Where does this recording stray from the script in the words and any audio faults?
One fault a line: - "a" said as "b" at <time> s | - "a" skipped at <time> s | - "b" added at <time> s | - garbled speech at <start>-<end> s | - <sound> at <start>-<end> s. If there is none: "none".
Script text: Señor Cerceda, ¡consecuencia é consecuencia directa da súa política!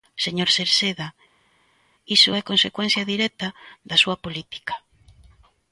- "consecuencia" said as "iso" at 2.2 s